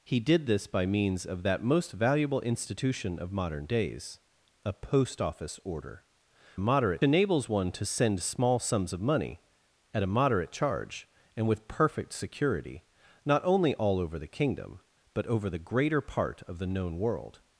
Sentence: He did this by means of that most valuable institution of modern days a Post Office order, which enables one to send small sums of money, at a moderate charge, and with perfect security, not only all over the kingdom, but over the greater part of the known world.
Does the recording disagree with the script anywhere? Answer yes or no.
yes